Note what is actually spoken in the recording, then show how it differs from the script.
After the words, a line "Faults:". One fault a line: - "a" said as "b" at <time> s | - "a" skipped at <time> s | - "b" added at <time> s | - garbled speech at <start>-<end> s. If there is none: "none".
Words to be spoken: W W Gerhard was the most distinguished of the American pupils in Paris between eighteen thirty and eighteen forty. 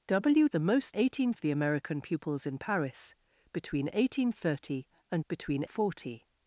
W The most eighteen of the American pupils in Paris between eighteen thirty and between forty.
Faults:
- "W Gerhard was" skipped at 0.5 s
- "distinguished" said as "eighteen" at 0.9 s
- "eighteen" said as "between" at 5.3 s